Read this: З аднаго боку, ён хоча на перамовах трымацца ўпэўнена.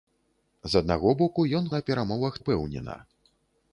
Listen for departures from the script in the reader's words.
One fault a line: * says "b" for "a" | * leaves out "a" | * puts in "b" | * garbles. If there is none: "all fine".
* leaves out "хоча"
* leaves out "трымацца"